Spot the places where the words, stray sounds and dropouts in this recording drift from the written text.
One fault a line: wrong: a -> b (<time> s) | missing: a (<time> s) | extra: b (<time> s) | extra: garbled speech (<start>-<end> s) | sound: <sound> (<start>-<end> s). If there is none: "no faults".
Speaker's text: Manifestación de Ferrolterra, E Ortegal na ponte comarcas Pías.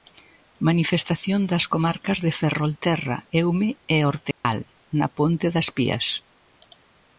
extra: das comarcas (1.5 s)
extra: Eume (3.4 s)
sound: dropout (4.3-4.4 s)
wrong: comarcas -> das (5.5 s)